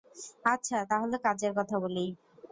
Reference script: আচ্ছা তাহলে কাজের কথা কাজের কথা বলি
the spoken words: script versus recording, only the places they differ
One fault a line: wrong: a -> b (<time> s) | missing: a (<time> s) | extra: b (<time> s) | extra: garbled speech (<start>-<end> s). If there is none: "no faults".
missing: কাজের কথা (1.8 s)